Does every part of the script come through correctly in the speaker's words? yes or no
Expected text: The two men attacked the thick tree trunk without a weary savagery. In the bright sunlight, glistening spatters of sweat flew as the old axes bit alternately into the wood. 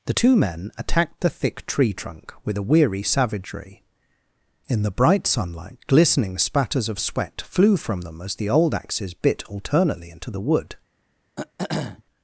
no